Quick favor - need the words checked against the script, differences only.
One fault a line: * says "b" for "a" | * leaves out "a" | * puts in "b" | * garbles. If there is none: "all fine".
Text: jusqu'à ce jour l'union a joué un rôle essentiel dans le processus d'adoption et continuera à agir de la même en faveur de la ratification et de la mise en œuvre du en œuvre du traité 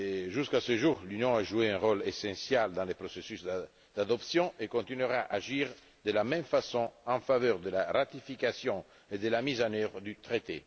* puts in "façon"
* leaves out "en œuvre du"